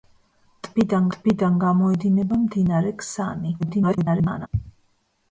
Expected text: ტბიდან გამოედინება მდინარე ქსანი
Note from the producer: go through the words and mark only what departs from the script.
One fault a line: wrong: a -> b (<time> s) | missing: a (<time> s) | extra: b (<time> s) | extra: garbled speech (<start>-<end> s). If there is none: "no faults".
extra: ტბიდან (1.2 s)
extra: garbled speech (3.6-4.5 s)